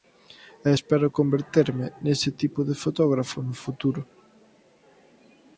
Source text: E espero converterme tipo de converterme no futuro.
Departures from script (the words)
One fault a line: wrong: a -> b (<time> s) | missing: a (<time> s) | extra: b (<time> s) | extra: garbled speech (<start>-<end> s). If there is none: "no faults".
extra: nese (2.0 s)
wrong: converterme -> fotógrafo (2.8 s)